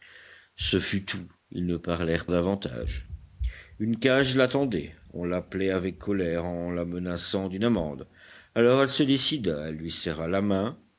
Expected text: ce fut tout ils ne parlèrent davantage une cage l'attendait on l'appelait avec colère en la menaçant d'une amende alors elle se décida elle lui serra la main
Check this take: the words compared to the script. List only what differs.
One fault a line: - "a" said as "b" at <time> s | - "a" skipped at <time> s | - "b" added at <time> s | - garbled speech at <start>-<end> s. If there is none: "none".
none